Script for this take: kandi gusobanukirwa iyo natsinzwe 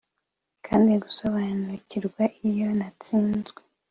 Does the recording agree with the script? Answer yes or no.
yes